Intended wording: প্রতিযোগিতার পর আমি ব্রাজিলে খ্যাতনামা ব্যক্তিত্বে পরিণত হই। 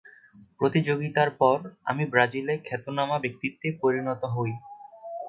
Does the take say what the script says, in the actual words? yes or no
yes